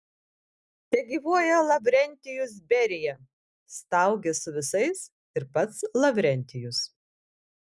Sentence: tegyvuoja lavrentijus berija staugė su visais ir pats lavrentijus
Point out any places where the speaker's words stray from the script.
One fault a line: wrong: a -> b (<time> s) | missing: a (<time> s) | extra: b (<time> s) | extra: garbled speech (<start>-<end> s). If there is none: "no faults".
no faults